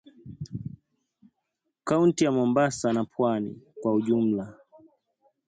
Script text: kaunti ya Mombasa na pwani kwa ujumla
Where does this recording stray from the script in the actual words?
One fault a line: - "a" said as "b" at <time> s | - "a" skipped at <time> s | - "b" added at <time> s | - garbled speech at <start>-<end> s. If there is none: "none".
none